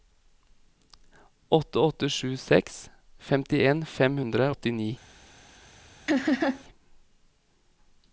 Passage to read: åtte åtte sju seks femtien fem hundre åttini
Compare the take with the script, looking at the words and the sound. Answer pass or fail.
fail